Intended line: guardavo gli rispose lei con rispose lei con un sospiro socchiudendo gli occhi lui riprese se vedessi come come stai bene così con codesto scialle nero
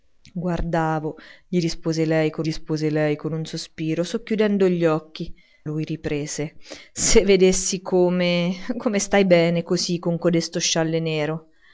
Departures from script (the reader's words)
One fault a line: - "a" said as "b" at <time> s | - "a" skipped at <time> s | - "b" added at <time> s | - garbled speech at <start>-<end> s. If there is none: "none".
none